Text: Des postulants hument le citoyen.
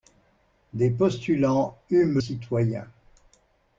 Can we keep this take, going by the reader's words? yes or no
no